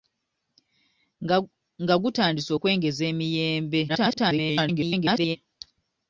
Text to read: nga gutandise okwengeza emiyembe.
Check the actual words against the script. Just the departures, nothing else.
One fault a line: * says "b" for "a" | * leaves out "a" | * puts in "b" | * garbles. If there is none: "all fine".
* garbles